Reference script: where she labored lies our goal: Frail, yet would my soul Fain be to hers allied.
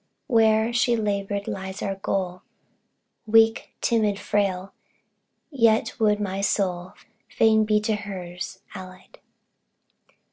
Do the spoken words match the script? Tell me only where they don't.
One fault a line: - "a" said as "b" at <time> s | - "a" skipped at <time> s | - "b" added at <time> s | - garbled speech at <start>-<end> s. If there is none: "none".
- "Weak timid" added at 3.3 s